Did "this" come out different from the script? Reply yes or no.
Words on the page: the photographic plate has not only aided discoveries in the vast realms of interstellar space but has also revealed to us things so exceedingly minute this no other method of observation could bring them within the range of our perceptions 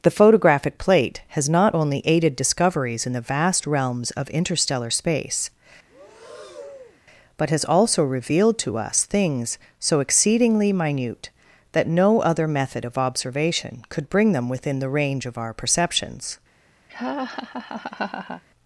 yes